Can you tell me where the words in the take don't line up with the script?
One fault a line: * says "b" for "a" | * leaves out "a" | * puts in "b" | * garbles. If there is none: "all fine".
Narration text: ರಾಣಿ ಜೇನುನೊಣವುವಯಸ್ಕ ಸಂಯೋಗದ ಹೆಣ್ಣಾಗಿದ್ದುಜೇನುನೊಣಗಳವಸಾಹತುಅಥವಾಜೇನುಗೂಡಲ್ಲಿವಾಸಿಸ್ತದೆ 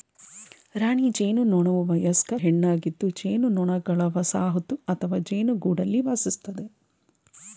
* leaves out "ಸಂಯೋಗದ"